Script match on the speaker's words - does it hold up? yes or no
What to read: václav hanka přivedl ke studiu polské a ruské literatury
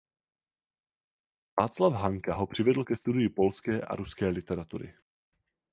no